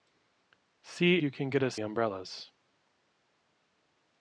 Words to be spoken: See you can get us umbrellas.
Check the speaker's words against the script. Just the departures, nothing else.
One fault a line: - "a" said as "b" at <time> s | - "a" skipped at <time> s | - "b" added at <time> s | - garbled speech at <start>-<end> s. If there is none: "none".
none